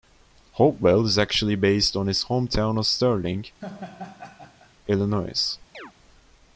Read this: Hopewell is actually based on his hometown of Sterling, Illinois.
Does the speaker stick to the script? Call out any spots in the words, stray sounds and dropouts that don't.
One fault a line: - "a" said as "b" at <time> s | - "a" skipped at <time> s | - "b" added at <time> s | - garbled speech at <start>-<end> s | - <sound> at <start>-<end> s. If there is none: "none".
- laugh at 3.6-4.7 s
- chirp at 5.7-5.9 s